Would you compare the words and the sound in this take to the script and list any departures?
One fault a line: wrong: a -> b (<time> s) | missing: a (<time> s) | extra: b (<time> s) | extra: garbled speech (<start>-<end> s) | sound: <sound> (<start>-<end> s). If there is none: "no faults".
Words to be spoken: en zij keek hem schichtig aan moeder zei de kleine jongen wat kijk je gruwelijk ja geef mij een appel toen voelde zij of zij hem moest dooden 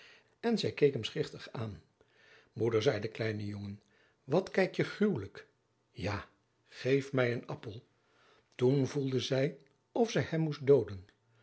no faults